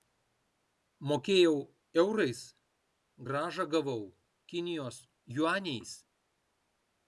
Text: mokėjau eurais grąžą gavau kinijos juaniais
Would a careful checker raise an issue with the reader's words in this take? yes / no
no